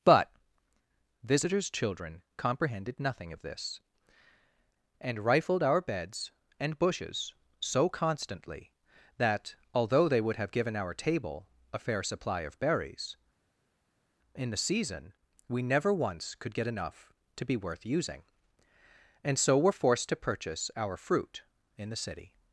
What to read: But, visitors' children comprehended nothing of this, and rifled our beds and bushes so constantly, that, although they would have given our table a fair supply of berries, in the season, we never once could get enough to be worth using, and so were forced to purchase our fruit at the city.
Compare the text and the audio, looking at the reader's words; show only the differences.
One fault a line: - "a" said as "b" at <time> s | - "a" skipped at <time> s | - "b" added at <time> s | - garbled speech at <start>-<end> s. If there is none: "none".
- "at" said as "in" at 21.8 s